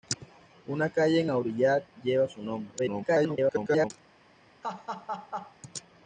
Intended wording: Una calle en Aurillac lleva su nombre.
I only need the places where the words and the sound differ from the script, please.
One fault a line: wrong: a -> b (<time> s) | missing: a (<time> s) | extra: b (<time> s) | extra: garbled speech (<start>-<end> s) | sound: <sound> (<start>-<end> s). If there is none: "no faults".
extra: garbled speech (2.8-3.9 s)
sound: laugh (4.6-5.6 s)